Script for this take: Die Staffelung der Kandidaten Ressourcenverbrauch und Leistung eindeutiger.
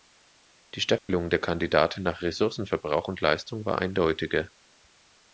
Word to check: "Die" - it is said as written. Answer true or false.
true